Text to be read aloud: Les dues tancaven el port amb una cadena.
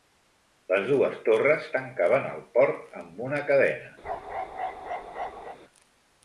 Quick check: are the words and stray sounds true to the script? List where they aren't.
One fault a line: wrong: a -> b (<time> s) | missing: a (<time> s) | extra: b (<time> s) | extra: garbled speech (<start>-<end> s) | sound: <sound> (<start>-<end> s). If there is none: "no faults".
extra: torres (1.3 s)
sound: bark (4.0-5.6 s)